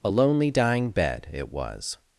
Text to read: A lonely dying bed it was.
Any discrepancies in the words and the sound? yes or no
no